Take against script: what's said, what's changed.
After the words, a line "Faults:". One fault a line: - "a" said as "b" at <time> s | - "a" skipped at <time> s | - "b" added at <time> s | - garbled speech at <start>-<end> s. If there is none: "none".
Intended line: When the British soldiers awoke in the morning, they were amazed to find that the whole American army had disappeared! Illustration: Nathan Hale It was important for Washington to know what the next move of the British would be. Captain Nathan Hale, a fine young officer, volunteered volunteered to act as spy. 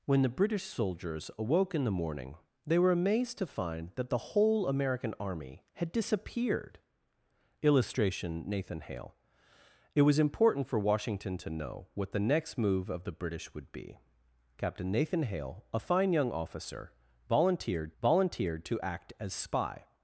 When the British soldiers awoke in the morning, they were amazed to find that the whole American army had disappeared! Illustration: Nathan Hale It was important for Washington to know what the next move of the British would be. Captain Nathan Hale, a fine young officer, volunteered volunteered to act as spy.
Faults:
none